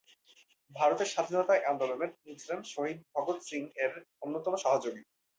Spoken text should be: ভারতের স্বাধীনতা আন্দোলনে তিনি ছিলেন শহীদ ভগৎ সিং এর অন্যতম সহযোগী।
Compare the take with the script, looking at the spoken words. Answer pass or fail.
pass